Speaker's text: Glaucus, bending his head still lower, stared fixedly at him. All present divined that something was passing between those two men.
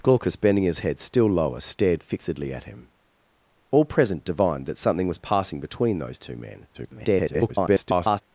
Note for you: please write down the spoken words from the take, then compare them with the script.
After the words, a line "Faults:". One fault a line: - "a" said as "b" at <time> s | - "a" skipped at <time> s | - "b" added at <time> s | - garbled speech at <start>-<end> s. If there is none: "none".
Glaucus, bending his head still lower, stared fixedly at him. All present divined that something was passing between those two men. [garbled]
Faults:
- garbled speech at 6.7-8.2 s